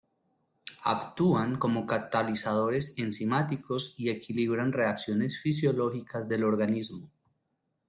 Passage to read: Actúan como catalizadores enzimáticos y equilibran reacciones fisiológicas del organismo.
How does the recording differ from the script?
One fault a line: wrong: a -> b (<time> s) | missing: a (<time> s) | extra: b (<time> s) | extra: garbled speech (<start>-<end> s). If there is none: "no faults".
no faults